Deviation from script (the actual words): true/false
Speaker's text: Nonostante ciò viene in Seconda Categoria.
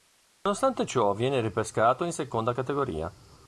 true